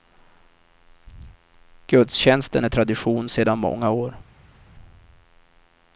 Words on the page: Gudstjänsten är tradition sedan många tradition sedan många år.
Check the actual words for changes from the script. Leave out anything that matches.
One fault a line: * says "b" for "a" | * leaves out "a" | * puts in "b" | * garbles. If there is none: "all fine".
* leaves out "tradition sedan många"